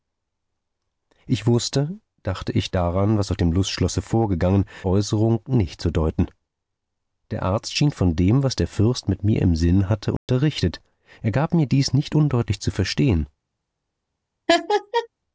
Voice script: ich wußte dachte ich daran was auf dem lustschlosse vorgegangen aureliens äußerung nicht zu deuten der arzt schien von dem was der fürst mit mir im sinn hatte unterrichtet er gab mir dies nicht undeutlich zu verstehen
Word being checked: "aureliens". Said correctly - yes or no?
no